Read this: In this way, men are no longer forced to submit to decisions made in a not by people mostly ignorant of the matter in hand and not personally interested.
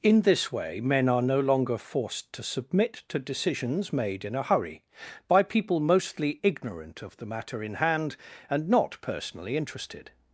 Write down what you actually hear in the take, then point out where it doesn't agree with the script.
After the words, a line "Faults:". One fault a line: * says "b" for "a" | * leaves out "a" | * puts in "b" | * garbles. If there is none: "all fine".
In this way, men are no longer forced to submit to decisions made in a hurry by people mostly ignorant of the matter in hand and not personally interested.
Faults:
* says "hurry" for "not"